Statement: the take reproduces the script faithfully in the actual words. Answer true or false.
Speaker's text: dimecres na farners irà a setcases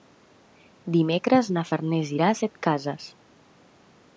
true